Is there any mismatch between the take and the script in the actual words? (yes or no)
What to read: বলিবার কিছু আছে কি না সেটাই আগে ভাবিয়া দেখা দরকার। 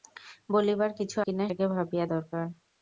yes